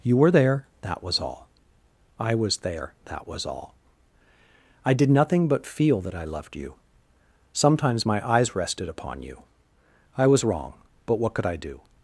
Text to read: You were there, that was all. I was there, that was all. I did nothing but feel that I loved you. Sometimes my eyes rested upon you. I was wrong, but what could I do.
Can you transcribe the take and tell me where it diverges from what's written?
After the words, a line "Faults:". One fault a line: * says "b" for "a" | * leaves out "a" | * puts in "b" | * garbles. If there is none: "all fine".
You were there, that was all. I was there, that was all. I did nothing but feel that I loved you. Sometimes my eyes rested upon you. I was wrong, but what could I do.
Faults:
all fine